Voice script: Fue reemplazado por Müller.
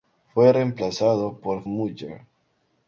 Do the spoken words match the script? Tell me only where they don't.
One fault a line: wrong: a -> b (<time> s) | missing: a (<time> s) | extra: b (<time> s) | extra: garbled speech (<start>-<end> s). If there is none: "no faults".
no faults